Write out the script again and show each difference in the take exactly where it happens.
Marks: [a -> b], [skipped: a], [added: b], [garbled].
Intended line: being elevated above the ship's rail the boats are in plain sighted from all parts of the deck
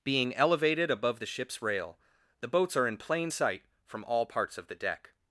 being elevated above the ship's rail the boats are in plain [sighted -> sight] from all parts of the deck